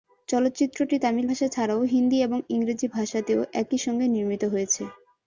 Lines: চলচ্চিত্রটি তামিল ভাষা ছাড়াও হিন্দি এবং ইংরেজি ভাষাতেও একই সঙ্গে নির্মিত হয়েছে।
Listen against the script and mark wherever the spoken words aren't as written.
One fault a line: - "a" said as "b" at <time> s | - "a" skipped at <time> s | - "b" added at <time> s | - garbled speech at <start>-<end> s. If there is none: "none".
none